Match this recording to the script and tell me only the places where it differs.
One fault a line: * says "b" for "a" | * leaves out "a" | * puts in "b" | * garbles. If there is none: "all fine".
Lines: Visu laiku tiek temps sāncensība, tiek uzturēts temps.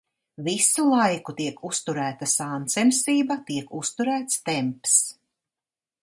* says "uzturēta" for "temps"